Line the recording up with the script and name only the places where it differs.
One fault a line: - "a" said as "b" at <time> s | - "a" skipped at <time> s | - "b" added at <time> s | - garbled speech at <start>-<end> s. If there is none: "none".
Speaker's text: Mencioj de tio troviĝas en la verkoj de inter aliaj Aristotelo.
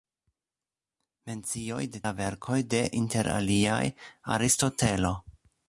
- "tio troviĝas en" skipped at 2.0 s